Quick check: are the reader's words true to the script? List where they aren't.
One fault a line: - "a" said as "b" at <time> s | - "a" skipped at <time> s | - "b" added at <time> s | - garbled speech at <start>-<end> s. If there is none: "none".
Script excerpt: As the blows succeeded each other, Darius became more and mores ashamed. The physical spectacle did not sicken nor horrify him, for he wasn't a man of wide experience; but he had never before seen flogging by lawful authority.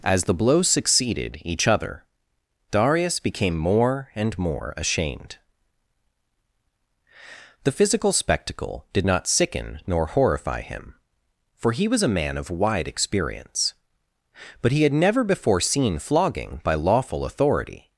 - "mores" said as "more" at 4.4 s
- "wasn't" said as "was" at 11.9 s